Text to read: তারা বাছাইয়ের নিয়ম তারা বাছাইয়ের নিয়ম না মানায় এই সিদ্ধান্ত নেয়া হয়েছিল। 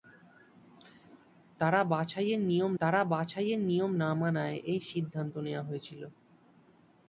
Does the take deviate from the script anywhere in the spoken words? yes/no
no